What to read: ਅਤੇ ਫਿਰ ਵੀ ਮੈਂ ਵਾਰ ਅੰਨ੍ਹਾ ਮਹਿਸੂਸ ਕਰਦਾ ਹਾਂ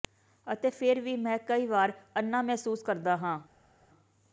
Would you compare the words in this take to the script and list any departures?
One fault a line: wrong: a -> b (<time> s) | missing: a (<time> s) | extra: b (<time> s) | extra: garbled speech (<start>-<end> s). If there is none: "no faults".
extra: ਕਈ (1.4 s)